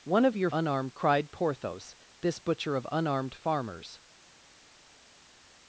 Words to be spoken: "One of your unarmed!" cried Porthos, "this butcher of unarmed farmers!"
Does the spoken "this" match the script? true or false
true